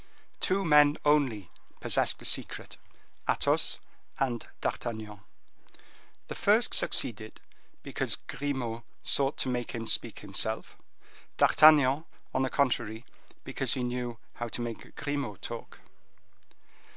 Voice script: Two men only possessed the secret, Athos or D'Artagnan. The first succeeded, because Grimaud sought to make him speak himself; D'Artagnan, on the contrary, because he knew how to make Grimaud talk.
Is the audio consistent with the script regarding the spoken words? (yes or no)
no